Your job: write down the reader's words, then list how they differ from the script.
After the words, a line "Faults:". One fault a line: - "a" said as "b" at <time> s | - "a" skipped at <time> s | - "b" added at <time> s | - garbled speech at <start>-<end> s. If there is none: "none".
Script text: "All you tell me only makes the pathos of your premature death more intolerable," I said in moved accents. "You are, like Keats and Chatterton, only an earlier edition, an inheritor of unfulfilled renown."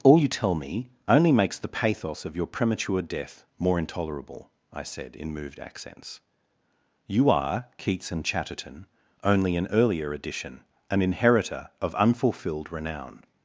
"All you tell me only makes the pathos of your premature death more intolerable," I said in moved accents. "You are, Keats and Chatterton, only an earlier edition, an inheritor of unfulfilled renown."
Faults:
- "like" skipped at 7.7 s